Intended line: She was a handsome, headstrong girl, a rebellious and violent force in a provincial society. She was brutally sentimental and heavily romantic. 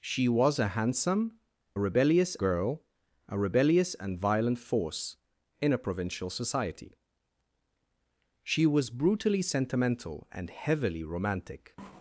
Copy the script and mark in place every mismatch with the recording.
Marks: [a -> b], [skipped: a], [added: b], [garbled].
She was a handsome, [headstrong -> rebellious] girl, a rebellious and violent force in a provincial society. She was brutally sentimental and heavily romantic.